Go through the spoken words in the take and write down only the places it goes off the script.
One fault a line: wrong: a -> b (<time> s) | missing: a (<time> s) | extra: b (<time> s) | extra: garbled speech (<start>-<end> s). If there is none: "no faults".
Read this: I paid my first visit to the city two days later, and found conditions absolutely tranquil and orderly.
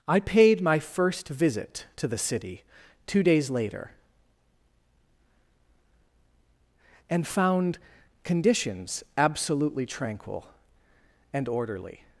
no faults